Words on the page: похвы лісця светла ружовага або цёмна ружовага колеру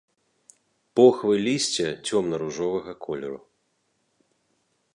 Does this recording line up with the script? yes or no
no